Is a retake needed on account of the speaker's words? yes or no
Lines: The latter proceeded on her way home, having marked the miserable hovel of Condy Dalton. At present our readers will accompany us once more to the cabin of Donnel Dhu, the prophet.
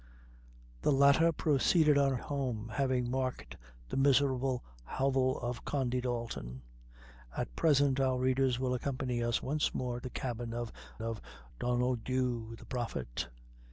yes